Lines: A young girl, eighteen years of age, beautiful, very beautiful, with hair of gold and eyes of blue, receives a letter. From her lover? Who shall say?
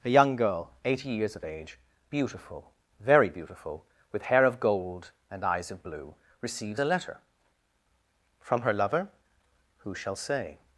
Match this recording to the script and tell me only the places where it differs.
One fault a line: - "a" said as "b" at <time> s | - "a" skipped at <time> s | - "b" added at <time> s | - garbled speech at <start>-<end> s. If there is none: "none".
- "eighteen" said as "eighty" at 0.8 s